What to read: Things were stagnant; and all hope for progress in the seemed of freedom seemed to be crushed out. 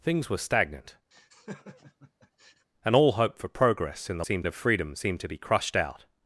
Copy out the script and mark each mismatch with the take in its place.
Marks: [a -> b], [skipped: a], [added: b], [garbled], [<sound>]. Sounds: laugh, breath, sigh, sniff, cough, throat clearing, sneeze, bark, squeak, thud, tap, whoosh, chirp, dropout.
Things were stagnant; [laugh] and all hope for progress in the seemed of freedom seemed to be crushed out.